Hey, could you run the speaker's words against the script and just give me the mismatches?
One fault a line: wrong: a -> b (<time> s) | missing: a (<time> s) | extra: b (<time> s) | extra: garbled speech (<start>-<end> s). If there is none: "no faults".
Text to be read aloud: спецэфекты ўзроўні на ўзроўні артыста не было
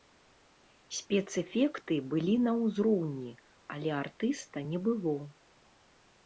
wrong: ўзроўні -> былі (2.1 s)
extra: але (3.8 s)